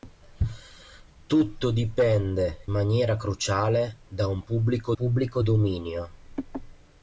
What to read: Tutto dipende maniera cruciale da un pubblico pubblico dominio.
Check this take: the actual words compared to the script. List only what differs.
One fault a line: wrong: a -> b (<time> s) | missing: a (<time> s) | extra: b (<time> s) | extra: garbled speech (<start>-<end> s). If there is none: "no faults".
no faults